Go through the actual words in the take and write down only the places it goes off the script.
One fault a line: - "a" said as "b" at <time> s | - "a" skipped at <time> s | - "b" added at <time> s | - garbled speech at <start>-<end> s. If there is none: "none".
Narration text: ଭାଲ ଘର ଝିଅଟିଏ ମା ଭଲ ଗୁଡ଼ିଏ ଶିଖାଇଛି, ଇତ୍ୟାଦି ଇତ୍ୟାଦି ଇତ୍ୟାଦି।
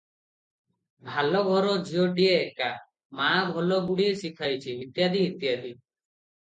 - "ଏକା" added at 2.4 s
- "ଇତ୍ୟାଦି" skipped at 5.8 s